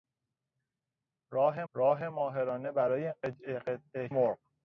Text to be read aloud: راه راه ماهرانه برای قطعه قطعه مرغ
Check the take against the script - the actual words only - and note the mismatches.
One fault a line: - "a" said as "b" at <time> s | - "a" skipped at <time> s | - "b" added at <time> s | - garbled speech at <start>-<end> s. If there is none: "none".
none